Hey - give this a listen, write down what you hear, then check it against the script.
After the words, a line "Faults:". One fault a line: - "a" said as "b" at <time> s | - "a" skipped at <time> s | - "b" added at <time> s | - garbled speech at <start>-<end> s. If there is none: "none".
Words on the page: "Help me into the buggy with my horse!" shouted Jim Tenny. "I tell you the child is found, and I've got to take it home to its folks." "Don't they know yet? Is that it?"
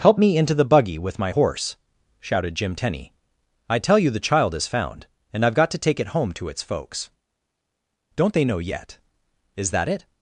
"Help me into the buggy with my horse!" shouted Jim Tenny. "I tell you the child is found, and I've got to take it home to its folks." "Don't they know yet? Is that it?"
Faults:
none